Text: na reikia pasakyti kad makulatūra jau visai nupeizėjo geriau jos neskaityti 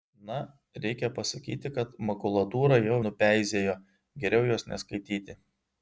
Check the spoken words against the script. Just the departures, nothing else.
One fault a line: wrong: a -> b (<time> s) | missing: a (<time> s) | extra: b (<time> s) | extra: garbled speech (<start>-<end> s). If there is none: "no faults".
missing: visai (3.0 s)